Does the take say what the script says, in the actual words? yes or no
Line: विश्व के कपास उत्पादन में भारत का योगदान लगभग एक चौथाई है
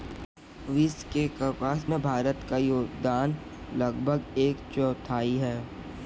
no